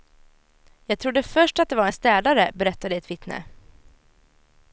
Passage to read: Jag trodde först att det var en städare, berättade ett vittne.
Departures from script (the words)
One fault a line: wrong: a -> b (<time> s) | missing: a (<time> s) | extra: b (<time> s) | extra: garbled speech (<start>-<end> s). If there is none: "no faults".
no faults